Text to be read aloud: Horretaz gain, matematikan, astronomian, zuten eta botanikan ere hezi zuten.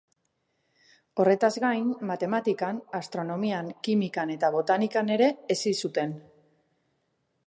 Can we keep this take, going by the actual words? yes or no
no